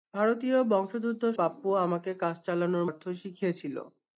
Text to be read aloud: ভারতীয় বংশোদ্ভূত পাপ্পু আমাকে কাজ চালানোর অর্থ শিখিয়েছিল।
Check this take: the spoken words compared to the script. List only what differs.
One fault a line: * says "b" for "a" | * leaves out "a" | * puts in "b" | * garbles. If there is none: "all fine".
all fine